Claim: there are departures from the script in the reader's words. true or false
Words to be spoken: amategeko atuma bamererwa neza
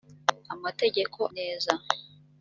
true